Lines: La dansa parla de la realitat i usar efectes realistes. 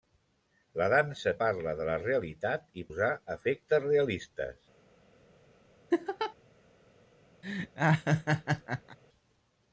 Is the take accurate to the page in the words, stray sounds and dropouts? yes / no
no